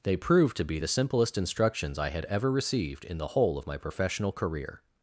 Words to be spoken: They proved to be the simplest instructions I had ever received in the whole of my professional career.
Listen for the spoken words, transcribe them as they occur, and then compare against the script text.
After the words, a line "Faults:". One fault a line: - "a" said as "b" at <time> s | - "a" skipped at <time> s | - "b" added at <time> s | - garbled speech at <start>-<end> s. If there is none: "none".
They proved to be the simplest instructions I had ever received in the whole of my professional career.
Faults:
none